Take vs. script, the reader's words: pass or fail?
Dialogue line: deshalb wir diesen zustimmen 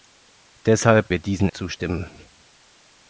pass